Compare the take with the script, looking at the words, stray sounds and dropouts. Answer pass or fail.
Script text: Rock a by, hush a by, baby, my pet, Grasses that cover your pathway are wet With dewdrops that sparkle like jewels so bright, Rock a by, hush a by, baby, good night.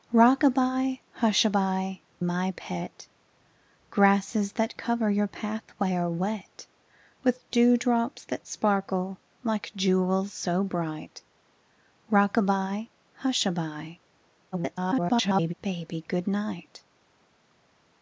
fail